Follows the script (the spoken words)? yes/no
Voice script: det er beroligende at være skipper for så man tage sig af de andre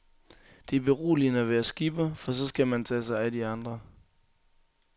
no